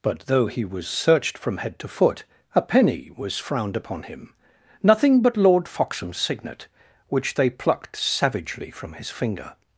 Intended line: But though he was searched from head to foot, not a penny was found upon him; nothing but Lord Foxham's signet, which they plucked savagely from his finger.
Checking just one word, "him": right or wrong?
right